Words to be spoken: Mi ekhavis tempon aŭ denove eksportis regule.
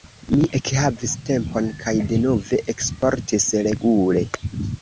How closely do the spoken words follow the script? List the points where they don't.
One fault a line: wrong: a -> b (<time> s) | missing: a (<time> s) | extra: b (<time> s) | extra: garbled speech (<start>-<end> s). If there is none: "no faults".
wrong: aŭ -> kaj (1.8 s)